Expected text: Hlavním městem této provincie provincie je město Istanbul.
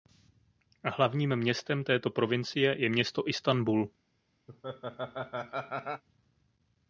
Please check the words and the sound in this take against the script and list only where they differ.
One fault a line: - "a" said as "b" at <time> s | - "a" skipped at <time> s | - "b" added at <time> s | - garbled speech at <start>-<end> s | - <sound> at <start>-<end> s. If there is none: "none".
- "provincie" skipped at 2.8 s
- laugh at 4.5-6.0 s